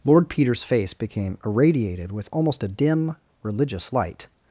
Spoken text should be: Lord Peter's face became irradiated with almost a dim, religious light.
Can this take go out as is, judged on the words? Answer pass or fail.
pass